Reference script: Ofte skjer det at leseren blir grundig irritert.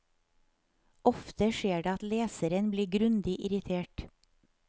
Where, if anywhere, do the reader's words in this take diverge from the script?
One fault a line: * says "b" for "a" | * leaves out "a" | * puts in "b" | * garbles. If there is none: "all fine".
all fine